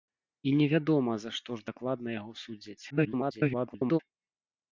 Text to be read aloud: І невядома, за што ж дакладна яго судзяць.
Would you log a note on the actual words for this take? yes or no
yes